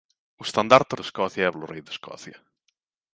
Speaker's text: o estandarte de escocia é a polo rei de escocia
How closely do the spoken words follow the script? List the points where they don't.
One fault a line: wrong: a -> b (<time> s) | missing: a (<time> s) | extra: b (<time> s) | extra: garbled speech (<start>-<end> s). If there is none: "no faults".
no faults